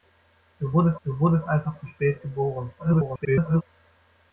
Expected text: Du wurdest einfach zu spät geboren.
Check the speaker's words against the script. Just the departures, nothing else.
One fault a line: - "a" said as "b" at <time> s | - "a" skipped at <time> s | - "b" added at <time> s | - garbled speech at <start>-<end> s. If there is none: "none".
- "du wurdest" added at 1.0 s
- garbled speech at 2.8-3.6 s